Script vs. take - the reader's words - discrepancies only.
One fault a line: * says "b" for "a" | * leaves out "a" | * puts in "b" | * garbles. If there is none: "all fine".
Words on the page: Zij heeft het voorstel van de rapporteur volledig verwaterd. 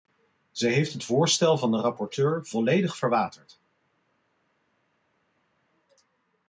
all fine